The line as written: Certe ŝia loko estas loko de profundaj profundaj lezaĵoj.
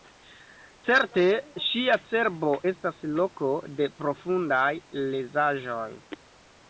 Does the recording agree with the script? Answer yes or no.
no